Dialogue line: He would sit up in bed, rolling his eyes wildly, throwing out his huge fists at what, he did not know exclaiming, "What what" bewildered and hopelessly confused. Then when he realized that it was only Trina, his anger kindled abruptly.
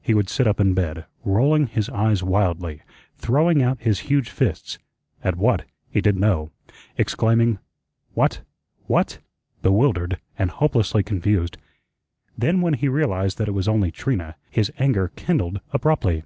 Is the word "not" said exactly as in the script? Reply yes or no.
no